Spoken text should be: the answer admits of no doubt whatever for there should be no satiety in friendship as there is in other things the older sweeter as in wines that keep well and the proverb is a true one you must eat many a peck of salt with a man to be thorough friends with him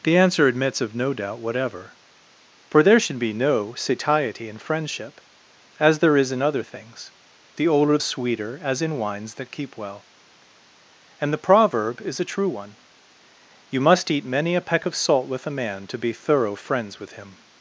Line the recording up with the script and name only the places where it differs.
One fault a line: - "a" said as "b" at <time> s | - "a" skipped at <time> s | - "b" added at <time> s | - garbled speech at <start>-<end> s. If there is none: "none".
none